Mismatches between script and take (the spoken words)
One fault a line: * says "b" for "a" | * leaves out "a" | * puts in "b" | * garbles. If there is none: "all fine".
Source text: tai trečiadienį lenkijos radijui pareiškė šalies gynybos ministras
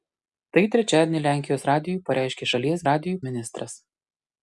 * says "radijui" for "gynybos"